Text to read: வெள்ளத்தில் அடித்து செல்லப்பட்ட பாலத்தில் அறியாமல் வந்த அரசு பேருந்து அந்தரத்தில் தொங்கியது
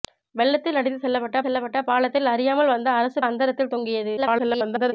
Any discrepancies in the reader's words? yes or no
yes